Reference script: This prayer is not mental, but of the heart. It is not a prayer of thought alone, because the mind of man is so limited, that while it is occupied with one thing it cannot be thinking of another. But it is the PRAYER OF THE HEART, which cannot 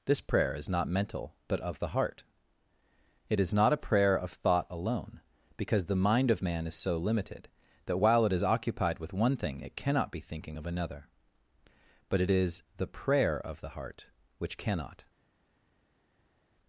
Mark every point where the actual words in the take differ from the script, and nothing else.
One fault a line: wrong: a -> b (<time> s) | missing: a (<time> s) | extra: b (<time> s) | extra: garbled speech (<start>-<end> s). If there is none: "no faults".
no faults